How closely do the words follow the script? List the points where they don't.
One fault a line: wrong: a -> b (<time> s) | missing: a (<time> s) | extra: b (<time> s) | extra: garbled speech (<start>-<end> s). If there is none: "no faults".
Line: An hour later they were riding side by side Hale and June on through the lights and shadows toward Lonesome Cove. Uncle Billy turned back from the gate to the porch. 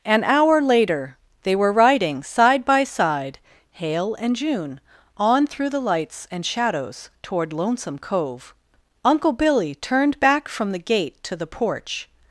no faults